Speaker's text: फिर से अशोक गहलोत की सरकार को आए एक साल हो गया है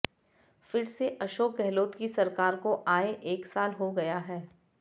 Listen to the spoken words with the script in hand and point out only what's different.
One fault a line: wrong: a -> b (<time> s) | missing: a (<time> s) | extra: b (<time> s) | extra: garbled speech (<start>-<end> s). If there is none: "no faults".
no faults